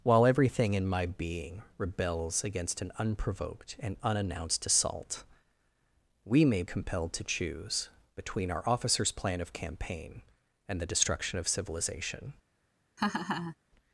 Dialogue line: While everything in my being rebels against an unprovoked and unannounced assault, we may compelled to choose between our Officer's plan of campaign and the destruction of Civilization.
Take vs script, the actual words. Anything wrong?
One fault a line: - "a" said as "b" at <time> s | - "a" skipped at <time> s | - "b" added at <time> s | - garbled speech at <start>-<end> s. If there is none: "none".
none